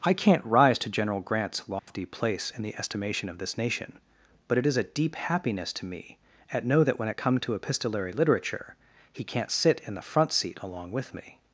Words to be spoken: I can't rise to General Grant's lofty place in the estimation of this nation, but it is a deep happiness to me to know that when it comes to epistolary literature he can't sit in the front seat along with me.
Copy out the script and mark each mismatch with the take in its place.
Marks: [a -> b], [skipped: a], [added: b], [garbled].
I can't rise to General Grant's lofty place in the estimation of this nation, but it is a deep happiness to me [to -> at] know that when it [comes -> come] to epistolary literature he can't sit in the front seat along with me.